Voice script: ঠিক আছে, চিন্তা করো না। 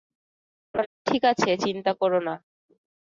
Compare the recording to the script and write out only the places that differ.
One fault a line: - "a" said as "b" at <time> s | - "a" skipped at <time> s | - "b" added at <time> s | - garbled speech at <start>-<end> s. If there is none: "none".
none